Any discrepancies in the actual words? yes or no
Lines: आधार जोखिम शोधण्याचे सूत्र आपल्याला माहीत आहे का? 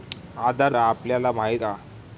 yes